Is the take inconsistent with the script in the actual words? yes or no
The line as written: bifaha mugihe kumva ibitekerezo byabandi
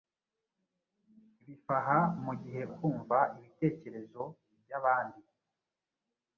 no